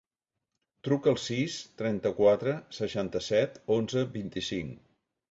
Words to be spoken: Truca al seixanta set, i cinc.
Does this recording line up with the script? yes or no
no